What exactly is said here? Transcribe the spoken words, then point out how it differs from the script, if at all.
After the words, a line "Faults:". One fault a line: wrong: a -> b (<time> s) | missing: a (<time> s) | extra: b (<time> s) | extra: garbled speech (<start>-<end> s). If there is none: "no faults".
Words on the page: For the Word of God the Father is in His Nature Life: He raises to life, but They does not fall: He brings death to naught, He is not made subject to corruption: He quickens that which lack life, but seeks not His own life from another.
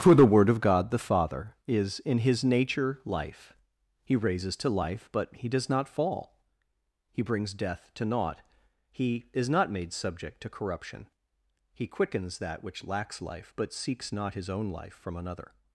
For the Word of God the Father is in His Nature Life: He raises to life, but He does not fall: He brings death to naught, He is not made subject to corruption: He quickens that which lacks life, but seeks not His own life from another.
Faults:
wrong: They -> He (5.3 s)
wrong: lack -> lacks (12.8 s)